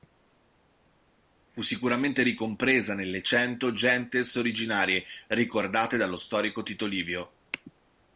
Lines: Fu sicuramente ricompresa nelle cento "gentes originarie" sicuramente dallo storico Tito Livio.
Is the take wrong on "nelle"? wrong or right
right